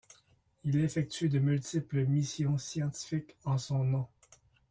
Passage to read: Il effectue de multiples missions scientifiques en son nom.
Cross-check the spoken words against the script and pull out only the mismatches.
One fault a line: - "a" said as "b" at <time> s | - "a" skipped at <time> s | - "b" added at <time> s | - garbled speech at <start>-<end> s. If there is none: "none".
none